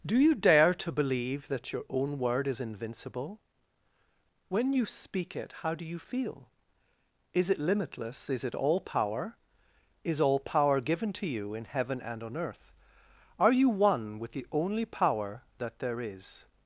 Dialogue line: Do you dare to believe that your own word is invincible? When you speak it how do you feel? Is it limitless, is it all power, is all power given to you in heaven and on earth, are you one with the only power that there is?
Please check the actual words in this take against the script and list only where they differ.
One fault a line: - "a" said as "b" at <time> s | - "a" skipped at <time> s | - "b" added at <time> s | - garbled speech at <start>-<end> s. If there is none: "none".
none